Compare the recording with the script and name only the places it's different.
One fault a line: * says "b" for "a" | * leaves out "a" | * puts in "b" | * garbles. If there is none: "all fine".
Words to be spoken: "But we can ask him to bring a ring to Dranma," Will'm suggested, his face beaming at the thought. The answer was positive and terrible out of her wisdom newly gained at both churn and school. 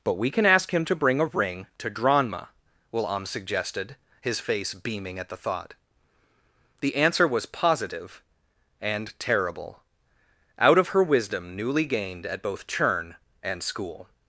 all fine